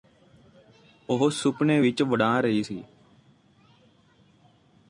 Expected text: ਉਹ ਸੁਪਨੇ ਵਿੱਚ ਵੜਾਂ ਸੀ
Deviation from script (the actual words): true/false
true